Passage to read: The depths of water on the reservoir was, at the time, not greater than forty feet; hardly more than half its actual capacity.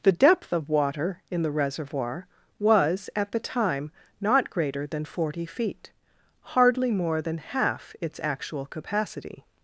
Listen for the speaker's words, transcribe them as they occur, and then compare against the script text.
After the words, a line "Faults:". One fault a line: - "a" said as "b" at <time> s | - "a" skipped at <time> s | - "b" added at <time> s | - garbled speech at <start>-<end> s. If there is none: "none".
The depth of water in the reservoir was, at the time, not greater than forty feet; hardly more than half its actual capacity.
Faults:
- "depths" said as "depth" at 0.1 s
- "on" said as "in" at 1.3 s